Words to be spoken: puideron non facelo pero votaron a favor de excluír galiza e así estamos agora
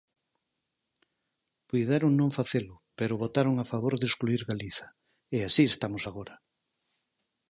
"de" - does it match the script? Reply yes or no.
yes